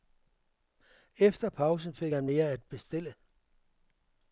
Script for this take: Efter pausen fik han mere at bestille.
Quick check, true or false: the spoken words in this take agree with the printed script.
true